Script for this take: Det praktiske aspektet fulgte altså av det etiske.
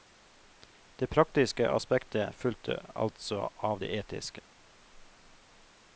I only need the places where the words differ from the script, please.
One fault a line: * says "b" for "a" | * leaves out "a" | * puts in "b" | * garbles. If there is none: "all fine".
all fine